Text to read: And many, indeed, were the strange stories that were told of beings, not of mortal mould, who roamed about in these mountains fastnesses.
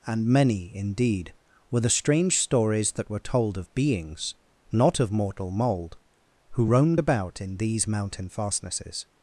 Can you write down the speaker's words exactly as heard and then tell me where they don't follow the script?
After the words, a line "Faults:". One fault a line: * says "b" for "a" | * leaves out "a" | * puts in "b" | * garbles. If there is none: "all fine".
And many, indeed, were the strange stories that were told of beings, not of mortal mould, who roamed about in these mountain fastnesses.
Faults:
* says "mountain" for "mountains"